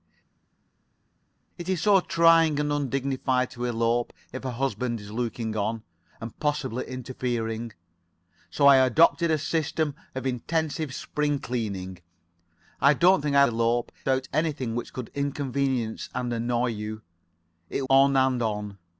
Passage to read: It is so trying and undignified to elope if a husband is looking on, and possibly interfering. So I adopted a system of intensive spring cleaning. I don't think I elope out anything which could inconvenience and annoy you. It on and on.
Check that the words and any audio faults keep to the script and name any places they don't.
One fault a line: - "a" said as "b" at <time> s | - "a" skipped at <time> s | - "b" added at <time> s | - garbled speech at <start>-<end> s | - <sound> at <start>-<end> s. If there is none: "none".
none